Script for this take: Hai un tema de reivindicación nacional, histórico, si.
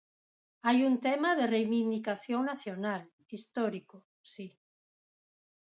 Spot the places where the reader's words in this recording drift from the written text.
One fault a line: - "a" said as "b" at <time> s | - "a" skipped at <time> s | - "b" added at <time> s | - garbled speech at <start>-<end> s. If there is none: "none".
none